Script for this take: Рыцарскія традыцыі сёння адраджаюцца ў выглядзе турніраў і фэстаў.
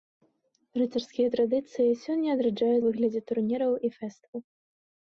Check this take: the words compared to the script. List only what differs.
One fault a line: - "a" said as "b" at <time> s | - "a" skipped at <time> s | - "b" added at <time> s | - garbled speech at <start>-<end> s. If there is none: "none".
- "ў" skipped at 2.8 s